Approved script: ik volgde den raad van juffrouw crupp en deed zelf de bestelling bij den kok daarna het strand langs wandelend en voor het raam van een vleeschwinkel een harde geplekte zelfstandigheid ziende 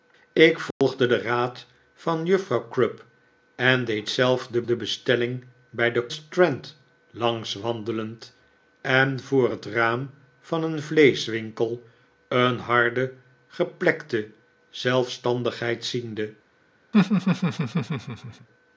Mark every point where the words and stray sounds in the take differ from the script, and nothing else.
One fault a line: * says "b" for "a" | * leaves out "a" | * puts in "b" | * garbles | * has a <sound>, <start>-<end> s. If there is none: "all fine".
* has a dropout, 0.7-0.8 s
* puts in "de"
* leaves out "kok daarna het"
* has a laugh, 16.9-18.5 s